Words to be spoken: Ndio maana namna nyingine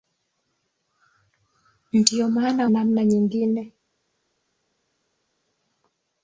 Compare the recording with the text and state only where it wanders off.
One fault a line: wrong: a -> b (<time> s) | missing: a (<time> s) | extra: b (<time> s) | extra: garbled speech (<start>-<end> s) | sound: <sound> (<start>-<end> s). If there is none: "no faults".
no faults